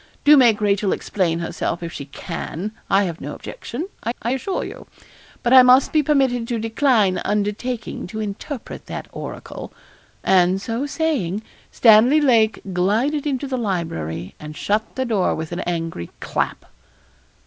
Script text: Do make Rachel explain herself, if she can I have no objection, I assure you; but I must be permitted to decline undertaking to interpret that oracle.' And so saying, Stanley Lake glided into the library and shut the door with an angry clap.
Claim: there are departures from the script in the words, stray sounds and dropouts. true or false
true